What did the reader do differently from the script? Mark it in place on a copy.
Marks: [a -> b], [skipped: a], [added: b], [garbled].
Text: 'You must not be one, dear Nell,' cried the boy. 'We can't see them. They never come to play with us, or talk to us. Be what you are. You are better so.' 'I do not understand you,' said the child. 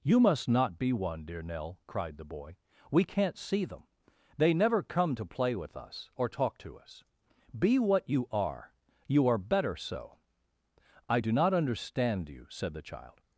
'You must not be one, dear Nell,' cried the boy. 'We can't see them. They never come to play with us, or talk to us. Be what you are. You are better so.' 'I do not understand you,' said the child.